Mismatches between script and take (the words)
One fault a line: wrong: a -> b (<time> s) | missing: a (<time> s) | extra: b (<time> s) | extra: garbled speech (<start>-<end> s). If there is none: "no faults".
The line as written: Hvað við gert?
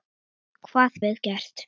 no faults